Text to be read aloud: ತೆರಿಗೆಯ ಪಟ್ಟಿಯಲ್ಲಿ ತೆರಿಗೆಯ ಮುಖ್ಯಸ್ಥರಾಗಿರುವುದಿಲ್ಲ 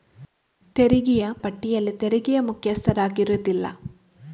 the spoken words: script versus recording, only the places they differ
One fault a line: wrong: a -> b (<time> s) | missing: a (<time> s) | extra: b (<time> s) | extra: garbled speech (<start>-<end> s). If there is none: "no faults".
no faults